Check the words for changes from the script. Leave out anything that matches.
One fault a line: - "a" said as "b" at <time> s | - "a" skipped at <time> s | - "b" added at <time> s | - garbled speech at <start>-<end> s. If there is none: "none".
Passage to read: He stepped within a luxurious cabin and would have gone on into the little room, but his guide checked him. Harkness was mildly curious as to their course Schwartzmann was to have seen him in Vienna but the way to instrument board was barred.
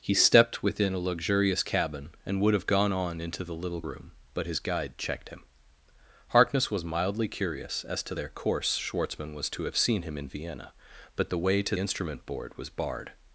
none